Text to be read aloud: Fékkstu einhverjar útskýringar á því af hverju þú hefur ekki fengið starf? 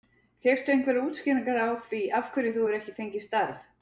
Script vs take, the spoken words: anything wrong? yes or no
no